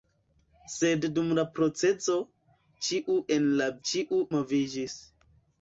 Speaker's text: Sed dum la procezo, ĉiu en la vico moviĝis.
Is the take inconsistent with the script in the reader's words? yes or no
yes